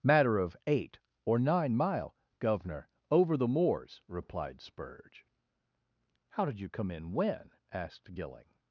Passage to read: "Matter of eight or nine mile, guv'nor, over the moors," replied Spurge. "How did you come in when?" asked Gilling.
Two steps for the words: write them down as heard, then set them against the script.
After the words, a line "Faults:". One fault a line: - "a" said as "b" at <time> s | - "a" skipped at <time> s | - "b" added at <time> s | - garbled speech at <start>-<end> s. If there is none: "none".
"Matter of eight or nine mile, guv'nor, over the moors," replied Spurge. "How did you come in when?" asked Gilling.
Faults:
none